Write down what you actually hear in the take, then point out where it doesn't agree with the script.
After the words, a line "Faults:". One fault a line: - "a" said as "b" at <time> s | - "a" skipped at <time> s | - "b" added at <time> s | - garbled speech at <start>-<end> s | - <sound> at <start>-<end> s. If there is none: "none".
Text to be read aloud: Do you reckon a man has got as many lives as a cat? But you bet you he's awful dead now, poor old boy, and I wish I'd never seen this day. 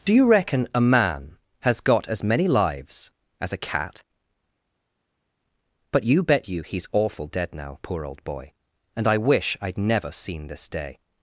Do you reckon a man has got as many lives as a cat? But you bet you he's awful dead now, poor old boy, and I wish I'd never seen this day.
Faults:
none